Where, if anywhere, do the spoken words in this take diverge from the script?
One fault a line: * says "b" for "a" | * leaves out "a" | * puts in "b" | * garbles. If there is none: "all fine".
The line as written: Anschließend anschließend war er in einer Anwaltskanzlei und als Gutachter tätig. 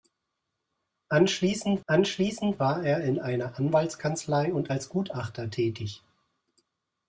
all fine